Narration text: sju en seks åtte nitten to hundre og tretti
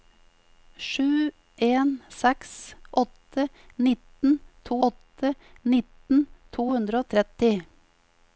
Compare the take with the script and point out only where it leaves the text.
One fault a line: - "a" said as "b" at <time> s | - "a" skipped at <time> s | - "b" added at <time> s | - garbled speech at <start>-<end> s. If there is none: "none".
- "åtte nitten to" added at 4.9 s